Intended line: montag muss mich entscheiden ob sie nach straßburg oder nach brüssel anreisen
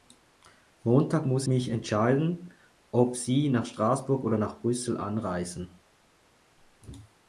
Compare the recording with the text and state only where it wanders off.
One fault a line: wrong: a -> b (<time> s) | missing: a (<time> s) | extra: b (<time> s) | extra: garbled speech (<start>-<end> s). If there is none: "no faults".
no faults